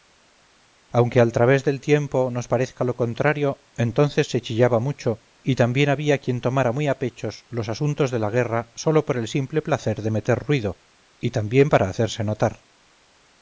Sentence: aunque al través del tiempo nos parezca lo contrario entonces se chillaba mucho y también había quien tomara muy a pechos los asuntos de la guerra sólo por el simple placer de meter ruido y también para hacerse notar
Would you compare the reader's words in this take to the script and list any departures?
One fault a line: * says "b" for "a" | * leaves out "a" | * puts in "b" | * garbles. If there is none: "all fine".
all fine